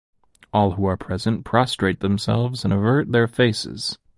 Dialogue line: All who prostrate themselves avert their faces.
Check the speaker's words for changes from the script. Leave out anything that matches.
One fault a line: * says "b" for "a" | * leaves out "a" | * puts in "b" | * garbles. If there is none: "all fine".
* puts in "are present"
* puts in "and"